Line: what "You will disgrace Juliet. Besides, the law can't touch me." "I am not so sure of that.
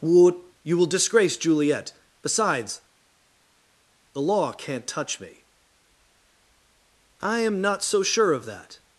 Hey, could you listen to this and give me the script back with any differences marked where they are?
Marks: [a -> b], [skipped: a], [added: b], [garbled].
what "You will disgrace Juliet. Besides, the law can't touch me." "I am not so sure of that.